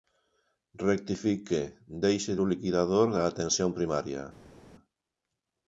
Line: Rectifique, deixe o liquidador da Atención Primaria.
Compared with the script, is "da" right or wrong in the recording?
right